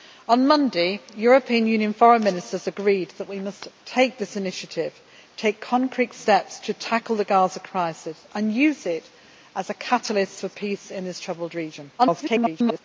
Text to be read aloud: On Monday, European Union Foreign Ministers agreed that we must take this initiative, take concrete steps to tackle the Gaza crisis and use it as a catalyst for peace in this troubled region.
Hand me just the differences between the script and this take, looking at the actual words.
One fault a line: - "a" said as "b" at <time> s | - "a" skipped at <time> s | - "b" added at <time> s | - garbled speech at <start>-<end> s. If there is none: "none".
- garbled speech at 12.0-12.8 s